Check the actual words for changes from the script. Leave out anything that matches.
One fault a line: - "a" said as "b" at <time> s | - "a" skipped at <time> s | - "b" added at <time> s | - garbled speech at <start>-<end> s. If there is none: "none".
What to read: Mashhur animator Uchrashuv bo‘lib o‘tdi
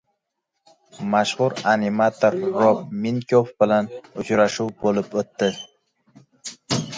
- "Rob Minkoff bilan" added at 2.6 s